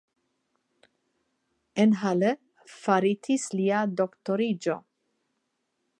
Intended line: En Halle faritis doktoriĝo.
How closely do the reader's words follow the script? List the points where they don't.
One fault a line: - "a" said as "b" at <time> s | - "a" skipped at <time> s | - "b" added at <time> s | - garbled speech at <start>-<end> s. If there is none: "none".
- "lia" added at 3.6 s